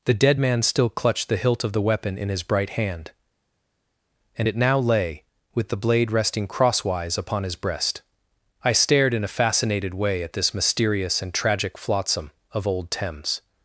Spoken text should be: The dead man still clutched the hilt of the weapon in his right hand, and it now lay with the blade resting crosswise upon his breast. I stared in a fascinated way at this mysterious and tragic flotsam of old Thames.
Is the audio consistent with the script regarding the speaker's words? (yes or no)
no